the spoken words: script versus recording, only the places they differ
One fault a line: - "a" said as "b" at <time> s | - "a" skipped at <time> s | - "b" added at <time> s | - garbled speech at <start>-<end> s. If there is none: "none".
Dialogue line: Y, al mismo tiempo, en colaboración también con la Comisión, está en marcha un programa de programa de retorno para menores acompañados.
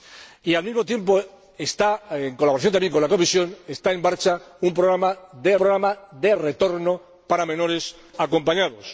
none